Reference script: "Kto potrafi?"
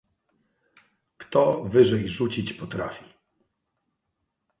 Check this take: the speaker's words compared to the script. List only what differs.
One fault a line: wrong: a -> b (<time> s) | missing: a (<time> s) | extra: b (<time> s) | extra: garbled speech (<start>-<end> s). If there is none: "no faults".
extra: wyżej rzucić (1.6 s)